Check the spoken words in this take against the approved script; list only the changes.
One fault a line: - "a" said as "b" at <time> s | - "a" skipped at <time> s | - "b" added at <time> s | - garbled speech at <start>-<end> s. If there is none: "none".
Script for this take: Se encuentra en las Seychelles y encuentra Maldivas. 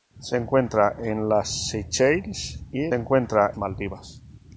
none